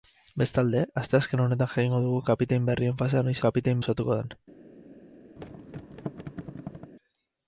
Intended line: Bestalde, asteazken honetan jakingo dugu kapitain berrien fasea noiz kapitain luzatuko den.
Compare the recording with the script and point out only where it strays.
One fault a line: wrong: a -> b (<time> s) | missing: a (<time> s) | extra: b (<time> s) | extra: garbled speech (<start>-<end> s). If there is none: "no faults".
no faults